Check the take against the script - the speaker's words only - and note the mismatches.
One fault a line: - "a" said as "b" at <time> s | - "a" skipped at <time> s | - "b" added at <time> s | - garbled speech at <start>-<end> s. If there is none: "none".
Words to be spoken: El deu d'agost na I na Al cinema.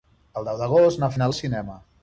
none